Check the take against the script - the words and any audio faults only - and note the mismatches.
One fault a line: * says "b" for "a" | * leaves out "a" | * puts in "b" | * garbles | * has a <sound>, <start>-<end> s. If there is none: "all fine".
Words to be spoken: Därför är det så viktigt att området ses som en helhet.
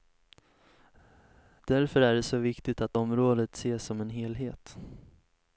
all fine